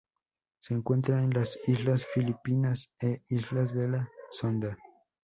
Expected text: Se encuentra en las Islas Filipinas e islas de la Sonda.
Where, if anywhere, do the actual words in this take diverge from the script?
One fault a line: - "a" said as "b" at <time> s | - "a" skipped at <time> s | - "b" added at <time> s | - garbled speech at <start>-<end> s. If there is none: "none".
none